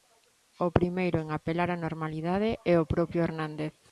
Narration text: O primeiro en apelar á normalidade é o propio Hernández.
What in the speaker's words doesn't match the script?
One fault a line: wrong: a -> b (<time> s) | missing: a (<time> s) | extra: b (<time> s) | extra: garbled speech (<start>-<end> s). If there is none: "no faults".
no faults